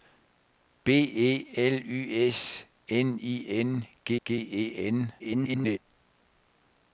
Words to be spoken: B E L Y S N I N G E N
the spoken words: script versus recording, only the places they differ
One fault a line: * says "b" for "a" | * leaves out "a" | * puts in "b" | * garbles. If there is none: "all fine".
* puts in "G"
* garbles